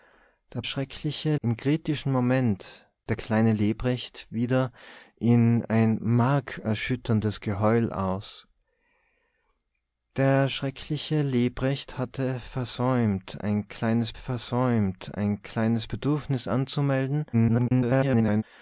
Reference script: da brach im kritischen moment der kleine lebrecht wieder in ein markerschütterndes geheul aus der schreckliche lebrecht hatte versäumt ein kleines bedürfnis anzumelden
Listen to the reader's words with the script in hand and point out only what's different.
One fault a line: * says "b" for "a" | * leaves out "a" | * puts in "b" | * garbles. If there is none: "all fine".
* says "schreckliche" for "brach"
* puts in "versäumt ein kleines"
* garbles